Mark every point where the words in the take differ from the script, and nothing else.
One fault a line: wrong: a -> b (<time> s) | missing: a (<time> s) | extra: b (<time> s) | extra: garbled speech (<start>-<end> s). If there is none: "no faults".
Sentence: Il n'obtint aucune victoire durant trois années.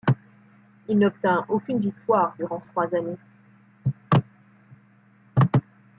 no faults